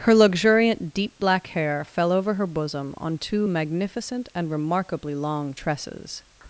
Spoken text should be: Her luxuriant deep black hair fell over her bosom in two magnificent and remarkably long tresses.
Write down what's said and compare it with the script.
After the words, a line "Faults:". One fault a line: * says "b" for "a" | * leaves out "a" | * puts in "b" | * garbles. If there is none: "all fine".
Her luxuriant deep black hair fell over her bosom on two magnificent and remarkably long tresses.
Faults:
* says "on" for "in"